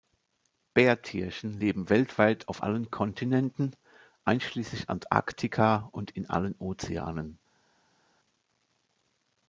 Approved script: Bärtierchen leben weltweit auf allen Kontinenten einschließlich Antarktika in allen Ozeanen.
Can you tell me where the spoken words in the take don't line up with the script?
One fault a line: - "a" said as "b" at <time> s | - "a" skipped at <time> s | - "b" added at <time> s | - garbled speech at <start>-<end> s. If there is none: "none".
- "und" added at 5.9 s